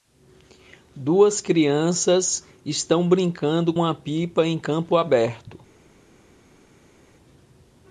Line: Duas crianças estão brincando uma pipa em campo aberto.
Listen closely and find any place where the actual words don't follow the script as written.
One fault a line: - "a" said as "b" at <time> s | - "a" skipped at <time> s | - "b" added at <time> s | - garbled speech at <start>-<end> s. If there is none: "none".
none